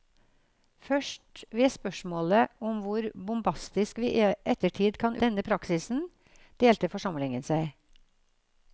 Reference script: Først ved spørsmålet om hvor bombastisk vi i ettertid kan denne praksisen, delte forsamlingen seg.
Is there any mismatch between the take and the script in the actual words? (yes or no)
no